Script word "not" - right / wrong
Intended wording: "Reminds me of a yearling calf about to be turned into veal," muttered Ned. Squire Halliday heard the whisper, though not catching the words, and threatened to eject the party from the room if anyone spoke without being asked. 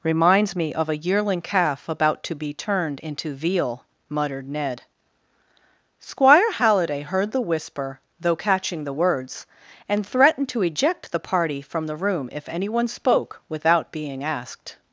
wrong